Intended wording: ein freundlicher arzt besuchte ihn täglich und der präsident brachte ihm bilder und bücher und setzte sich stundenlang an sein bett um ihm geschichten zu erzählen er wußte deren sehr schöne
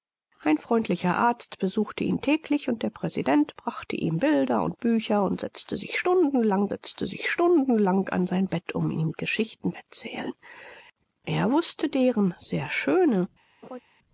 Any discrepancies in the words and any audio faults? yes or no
yes